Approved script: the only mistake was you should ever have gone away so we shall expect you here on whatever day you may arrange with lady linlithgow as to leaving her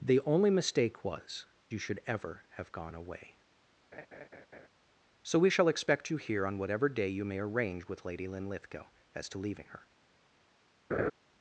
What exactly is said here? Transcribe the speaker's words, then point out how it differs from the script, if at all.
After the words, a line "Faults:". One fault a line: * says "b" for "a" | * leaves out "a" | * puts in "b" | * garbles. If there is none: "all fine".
the only mistake was you should ever have gone away so we shall expect you here on whatever day you may arrange with lady linlithgow as to leaving her
Faults:
all fine